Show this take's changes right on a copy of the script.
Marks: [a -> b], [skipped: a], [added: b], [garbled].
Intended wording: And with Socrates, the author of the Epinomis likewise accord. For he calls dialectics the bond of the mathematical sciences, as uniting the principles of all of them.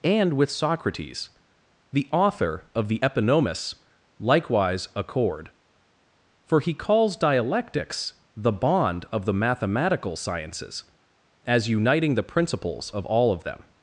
And with Socrates, the author of the Epinomis likewise accord. For he calls dialectics the bond of the mathematical sciences, as uniting the principles of all of them.